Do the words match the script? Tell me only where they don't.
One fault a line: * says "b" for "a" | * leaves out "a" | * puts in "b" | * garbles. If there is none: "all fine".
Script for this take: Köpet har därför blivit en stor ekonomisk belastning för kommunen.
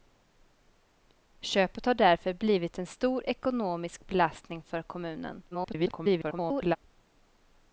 * garbles